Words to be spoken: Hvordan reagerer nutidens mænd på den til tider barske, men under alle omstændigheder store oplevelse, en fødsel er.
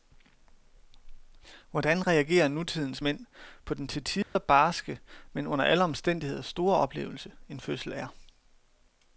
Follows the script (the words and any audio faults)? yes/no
no